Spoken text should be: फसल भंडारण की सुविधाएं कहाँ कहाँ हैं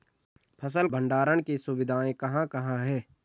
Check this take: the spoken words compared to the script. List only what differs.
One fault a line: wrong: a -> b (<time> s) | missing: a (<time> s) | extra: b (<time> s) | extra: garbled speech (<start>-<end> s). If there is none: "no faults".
no faults